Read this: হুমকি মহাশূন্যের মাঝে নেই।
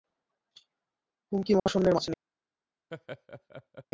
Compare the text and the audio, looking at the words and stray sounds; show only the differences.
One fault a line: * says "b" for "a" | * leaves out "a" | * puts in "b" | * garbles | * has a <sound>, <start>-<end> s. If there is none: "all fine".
* has a dropout, 1.6-1.7 s
* has a laugh, 2.9-3.9 s